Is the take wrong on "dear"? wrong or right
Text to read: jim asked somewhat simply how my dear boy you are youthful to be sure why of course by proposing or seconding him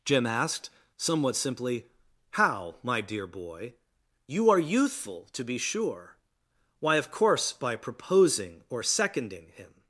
right